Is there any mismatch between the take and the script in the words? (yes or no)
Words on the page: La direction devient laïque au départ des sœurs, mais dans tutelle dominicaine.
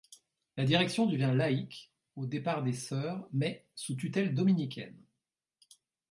yes